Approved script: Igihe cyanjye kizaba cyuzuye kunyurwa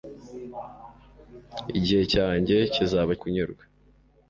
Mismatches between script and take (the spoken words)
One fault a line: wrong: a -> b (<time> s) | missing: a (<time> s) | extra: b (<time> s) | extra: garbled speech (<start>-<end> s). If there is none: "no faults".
missing: cyuzuye (3.1 s)